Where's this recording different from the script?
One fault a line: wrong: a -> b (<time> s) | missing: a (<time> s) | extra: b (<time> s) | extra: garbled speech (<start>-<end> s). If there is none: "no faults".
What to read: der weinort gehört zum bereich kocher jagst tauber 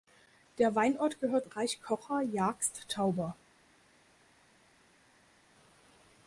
missing: zum (1.4 s)